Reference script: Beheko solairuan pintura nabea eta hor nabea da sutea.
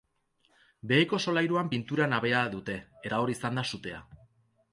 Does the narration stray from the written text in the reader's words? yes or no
yes